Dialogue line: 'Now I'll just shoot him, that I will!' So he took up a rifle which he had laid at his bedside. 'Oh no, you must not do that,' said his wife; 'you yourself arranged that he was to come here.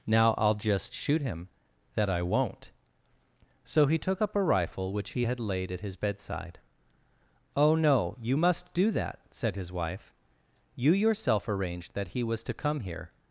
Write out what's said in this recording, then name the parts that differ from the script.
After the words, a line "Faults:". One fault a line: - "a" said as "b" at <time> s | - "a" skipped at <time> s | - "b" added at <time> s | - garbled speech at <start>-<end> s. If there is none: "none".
'Now I'll just shoot him, that I won't!' So he took up a rifle which he had laid at his bedside. 'Oh no, you must do that,' said his wife; 'you yourself arranged that he was to come here.
Faults:
- "will" said as "won't" at 2.2 s
- "not" skipped at 8.7 s